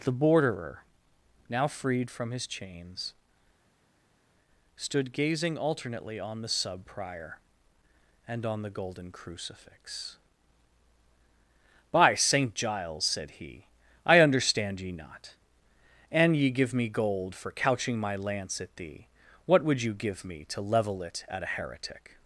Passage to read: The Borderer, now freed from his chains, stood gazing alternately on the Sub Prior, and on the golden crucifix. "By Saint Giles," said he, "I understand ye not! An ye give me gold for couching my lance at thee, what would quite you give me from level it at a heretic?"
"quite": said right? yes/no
no